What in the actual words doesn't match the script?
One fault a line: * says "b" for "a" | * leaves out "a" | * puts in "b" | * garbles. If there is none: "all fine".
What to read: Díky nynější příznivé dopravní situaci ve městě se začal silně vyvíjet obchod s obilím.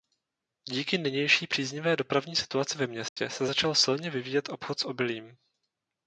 all fine